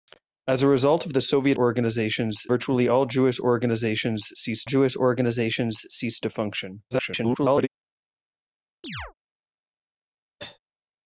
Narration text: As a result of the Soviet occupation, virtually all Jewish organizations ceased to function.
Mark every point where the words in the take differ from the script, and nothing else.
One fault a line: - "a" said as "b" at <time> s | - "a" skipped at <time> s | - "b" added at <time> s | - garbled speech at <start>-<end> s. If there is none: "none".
- "occupation" said as "organizations" at 1.5 s
- "Jewish organizations ceased" added at 4.6 s
- garbled speech at 6.9-7.7 s